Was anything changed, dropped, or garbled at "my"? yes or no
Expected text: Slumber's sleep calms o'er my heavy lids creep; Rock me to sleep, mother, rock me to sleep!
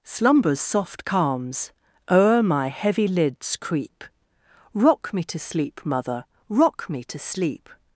no